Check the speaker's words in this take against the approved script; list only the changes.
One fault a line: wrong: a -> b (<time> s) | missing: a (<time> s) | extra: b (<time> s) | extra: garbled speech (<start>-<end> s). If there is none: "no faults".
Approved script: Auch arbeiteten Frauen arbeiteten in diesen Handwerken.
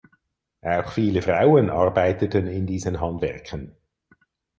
wrong: arbeiteten -> viele (0.9 s)